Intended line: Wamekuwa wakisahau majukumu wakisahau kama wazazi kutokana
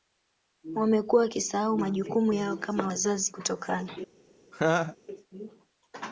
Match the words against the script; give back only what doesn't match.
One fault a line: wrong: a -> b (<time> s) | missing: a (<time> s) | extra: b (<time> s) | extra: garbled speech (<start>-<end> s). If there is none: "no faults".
wrong: wakisahau -> yao (2.3 s)